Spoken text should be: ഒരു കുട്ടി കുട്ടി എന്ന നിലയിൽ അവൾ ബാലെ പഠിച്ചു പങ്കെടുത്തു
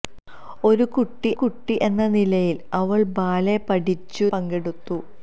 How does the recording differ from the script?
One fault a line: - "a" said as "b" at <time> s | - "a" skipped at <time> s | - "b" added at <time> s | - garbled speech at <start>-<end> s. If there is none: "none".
none